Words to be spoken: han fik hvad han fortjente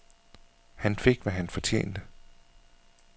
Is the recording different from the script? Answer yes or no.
no